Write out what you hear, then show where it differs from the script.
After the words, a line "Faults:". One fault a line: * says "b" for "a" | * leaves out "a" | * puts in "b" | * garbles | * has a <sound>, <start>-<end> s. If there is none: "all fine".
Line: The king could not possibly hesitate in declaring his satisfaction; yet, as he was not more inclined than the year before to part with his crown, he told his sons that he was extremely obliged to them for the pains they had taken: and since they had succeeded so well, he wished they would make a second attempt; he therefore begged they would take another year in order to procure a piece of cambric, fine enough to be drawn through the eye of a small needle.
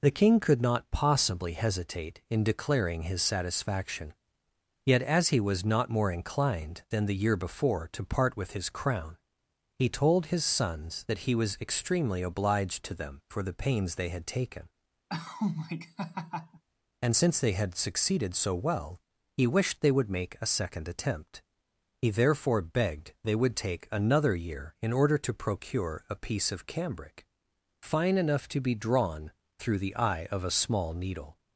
The king could not possibly hesitate in declaring his satisfaction; yet, as he was not more inclined than the year before to part with his crown, he told his sons that he was extremely obliged to them for the pains they had taken: and since they had succeeded so well, he wished they would make a second attempt; he therefore begged they would take another year in order to procure a piece of cambric, fine enough to be drawn through the eye of a small needle.
Faults:
* has a laugh, 15.1-16.6 s